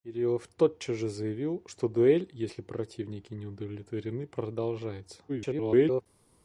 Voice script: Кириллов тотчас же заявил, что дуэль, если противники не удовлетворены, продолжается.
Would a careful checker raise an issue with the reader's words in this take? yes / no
yes